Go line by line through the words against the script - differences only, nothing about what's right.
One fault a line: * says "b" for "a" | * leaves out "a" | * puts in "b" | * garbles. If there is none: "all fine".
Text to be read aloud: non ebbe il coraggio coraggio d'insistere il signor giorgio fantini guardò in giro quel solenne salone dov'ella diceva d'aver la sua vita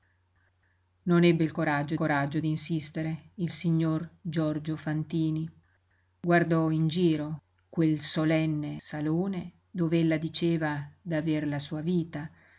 all fine